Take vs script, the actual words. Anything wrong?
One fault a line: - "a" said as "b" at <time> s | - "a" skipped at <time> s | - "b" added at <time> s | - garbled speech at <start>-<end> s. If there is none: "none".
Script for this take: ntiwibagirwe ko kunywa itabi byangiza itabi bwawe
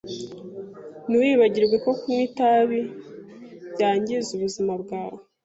- "itabi" said as "ubuzima" at 4.4 s